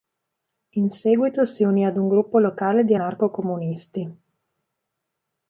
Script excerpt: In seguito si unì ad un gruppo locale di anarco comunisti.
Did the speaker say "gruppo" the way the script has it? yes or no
yes